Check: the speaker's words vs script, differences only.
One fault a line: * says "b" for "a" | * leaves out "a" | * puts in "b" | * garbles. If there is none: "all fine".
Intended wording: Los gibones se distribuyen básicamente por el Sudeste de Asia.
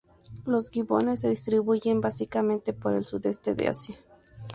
all fine